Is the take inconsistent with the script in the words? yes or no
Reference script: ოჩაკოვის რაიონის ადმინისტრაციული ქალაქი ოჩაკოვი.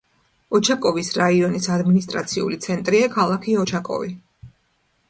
yes